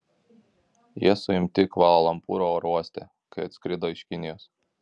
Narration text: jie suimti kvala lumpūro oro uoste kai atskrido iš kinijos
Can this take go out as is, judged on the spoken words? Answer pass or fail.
pass